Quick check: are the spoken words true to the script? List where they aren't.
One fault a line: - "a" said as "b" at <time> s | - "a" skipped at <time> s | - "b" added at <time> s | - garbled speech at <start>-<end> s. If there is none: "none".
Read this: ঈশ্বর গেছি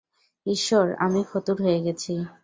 - "আমি ফতুর হয়ে" added at 1.0 s